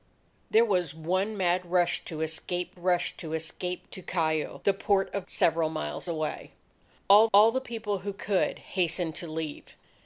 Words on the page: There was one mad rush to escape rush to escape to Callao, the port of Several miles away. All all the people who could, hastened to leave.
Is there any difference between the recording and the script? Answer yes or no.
no